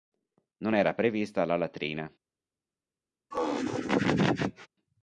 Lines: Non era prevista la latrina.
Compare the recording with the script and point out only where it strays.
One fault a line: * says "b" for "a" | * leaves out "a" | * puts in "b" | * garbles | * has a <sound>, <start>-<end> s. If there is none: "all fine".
* has a laugh, 3.3-4.7 s